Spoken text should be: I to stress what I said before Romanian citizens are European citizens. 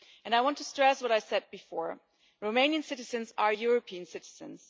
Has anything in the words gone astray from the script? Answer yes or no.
yes